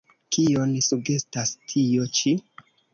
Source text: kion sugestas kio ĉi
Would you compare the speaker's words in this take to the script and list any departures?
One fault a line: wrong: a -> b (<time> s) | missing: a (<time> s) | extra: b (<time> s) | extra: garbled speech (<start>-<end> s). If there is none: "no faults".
wrong: kio -> tio (1.7 s)